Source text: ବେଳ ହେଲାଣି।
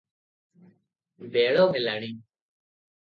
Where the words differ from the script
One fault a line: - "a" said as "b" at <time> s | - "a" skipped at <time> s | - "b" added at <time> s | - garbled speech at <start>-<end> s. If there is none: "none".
none